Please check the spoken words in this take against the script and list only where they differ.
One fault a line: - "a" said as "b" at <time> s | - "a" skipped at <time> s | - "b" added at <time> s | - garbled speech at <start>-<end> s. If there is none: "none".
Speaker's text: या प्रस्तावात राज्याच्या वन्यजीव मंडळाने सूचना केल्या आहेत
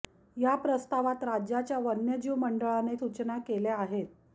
none